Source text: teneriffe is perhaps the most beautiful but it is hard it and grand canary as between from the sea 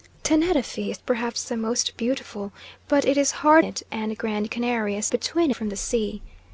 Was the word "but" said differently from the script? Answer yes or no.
no